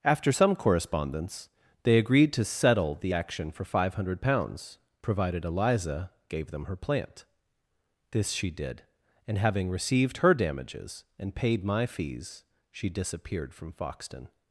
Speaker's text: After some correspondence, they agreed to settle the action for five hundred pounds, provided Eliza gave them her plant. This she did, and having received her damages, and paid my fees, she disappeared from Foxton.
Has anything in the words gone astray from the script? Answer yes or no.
no